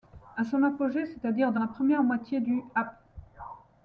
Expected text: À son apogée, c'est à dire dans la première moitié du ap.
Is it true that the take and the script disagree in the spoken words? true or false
false